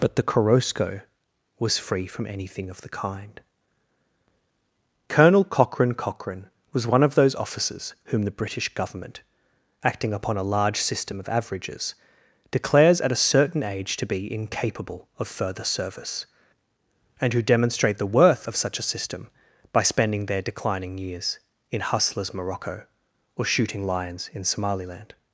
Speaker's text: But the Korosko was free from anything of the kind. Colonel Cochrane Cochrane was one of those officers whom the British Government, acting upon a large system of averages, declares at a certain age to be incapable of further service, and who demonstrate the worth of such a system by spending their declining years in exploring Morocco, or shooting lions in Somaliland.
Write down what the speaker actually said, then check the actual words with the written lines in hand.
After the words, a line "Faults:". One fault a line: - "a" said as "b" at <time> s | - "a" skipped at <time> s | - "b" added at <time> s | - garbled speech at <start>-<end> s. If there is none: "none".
But the Korosko was free from anything of the kind. Colonel Cochrane Cochrane was one of those officers whom the British Government, acting upon a large system of averages, declares at a certain age to be incapable of further service, and who demonstrate the worth of such a system by spending their declining years in hustlers Morocco, or shooting lions in Somaliland.
Faults:
- "exploring" said as "hustlers" at 21.8 s